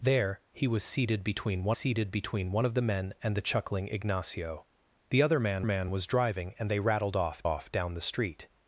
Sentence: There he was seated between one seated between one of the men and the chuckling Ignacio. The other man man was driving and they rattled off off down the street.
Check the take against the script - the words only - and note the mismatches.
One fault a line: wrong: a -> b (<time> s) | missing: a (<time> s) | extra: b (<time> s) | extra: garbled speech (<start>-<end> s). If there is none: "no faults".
no faults